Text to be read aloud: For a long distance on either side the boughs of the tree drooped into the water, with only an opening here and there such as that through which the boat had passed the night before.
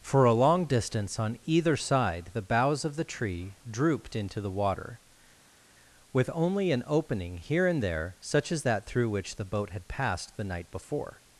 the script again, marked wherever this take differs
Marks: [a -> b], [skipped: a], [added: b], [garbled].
For a long distance on either side the boughs of the tree drooped into the water, with only an opening here and there such as that through which the boat had passed the night before.